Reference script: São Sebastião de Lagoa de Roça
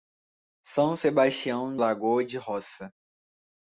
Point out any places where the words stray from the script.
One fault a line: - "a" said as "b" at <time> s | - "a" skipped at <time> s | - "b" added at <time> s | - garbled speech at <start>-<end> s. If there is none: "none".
- "de" skipped at 1.8 s